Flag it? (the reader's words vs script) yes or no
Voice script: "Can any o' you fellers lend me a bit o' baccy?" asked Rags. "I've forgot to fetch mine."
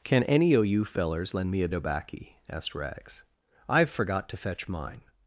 yes